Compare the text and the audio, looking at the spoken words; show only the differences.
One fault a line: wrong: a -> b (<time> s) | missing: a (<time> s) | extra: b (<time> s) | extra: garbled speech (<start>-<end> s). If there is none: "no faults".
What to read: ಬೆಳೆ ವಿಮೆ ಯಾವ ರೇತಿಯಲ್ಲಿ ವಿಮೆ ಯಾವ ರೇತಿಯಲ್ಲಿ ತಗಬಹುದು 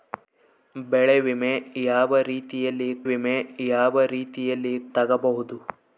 no faults